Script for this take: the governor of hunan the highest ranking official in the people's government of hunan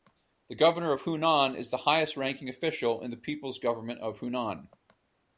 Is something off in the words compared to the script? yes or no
yes